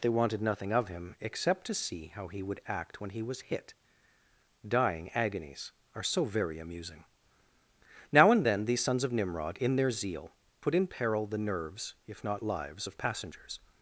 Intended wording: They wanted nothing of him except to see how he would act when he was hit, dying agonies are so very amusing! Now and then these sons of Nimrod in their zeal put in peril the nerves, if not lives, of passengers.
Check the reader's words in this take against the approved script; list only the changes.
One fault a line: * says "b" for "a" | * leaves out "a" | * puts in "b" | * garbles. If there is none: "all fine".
all fine